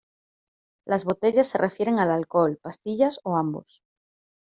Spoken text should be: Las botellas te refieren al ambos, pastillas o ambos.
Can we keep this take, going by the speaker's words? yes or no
no